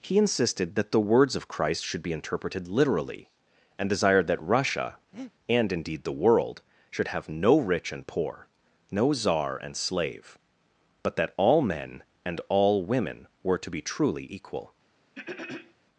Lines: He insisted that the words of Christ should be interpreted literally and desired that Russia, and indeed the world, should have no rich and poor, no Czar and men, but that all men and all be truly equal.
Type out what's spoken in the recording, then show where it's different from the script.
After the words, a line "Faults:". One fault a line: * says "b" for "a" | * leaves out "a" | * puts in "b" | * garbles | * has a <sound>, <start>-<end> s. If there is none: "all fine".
He insisted that the words of Christ should be interpreted literally and desired that Russia, and indeed the world, should have no rich and poor, no Czar and slave, but that all men and all women were to be truly equal.
Faults:
* has a breath, 5.1-5.3 s
* says "slave" for "men"
* puts in "women were to"
* has a throat clearing, 15.2-15.7 s